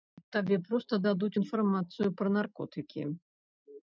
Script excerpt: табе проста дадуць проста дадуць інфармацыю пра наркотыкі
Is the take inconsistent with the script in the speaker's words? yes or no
yes